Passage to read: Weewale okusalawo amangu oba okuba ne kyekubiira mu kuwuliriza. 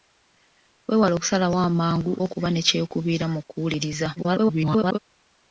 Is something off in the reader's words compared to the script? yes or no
yes